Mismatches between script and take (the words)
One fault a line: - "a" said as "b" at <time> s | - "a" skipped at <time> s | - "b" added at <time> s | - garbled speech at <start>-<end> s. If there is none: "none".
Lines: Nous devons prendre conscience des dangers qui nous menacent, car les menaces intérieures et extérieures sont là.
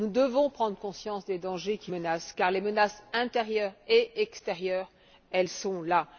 - "nous" skipped at 1.9 s